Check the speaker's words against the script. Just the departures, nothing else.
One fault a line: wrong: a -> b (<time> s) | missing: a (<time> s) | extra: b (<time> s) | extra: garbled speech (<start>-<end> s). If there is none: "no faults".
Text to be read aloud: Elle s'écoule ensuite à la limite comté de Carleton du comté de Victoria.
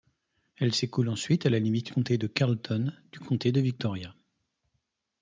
no faults